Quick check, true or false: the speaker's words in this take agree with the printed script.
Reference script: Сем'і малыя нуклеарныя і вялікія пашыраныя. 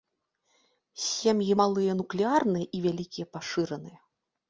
true